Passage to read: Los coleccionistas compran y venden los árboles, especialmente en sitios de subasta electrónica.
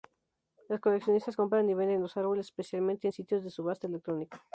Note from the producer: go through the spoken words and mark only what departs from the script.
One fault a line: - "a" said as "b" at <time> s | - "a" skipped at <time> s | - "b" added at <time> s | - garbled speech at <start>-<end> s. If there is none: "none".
none